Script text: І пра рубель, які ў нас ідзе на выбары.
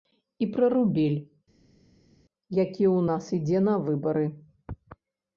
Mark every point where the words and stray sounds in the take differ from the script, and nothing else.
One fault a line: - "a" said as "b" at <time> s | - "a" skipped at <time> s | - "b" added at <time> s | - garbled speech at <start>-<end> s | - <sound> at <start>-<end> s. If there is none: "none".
none